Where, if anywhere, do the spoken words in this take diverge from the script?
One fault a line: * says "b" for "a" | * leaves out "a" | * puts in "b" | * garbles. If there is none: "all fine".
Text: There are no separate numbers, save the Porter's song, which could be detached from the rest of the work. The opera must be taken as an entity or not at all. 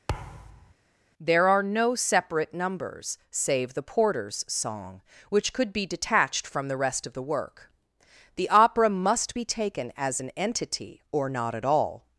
all fine